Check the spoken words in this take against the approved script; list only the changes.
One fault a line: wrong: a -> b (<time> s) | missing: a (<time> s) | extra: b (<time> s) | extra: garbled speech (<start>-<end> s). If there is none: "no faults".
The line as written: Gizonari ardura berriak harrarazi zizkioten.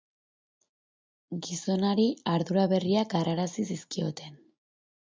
no faults